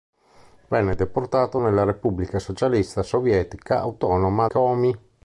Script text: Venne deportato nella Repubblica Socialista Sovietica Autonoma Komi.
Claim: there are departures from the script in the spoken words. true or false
false